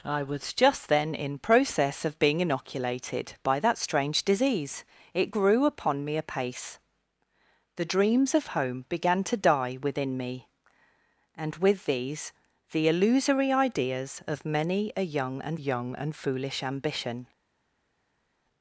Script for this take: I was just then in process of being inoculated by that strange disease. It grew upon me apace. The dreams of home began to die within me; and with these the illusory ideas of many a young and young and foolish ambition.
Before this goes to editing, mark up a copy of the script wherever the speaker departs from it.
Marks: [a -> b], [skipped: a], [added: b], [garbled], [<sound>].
I was just then in process of being inoculated by that strange disease. It grew upon me apace. The dreams of home began to die within me; and with these the illusory ideas of many a young and young and foolish ambition.